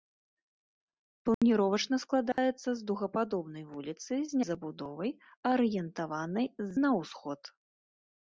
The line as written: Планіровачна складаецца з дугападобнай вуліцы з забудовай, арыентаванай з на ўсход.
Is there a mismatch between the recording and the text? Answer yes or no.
no